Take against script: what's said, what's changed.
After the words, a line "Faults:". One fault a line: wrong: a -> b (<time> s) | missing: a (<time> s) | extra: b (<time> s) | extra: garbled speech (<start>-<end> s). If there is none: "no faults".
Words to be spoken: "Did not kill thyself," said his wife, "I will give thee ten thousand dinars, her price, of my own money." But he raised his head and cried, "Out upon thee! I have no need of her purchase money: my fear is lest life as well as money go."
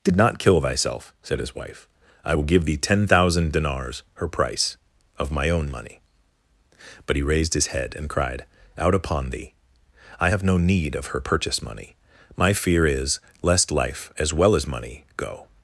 "Did not kill thyself," said his wife, "I will give thee ten thousand dinars, her price, of my own money." But he raised his head and cried, "Out upon thee! I have no need of her purchase money: my fear is lest life as well as money go."
Faults:
no faults